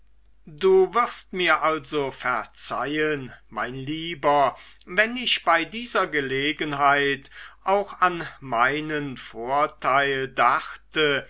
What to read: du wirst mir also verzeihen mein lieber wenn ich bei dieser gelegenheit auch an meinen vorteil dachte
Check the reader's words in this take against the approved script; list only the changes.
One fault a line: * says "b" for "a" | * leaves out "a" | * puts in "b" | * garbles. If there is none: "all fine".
all fine